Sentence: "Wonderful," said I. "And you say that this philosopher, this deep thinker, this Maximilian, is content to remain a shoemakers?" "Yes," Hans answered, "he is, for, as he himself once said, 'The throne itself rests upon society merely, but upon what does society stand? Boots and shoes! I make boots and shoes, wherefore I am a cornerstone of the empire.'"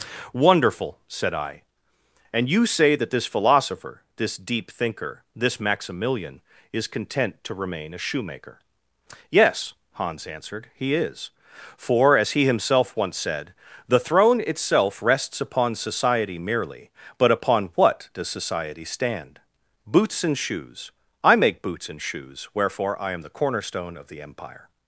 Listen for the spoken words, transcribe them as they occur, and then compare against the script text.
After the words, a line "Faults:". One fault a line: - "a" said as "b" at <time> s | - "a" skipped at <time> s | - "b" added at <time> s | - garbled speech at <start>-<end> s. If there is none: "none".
"Wonderful," said I. "And you say that this philosopher, this deep thinker, this Maximilian, is content to remain a shoemaker?" "Yes," Hans answered, "he is, for, as he himself once said, 'The throne itself rests upon society merely, but upon what does society stand? Boots and shoes! I make boots and shoes, wherefore I am the cornerstone of the empire.'"
Faults:
- "shoemakers" said as "shoemaker" at 8.0 s
- "a" said as "the" at 23.2 s